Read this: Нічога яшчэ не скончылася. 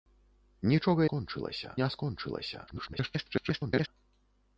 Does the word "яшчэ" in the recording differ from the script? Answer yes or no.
yes